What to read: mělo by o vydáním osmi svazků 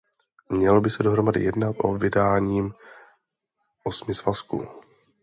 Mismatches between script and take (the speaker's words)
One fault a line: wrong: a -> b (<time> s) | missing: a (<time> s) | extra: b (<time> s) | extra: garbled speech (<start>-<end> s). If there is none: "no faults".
extra: se dohromady jednat (0.9 s)